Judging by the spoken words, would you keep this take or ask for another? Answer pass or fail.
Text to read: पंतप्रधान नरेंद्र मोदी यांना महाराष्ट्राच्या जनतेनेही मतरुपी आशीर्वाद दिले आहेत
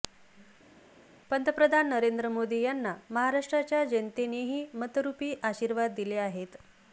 pass